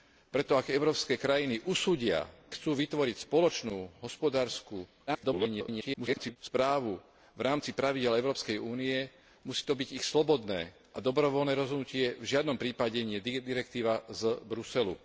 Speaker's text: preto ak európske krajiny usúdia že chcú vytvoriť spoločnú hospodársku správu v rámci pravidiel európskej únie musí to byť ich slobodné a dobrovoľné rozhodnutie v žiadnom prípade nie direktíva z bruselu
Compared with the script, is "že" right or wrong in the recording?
wrong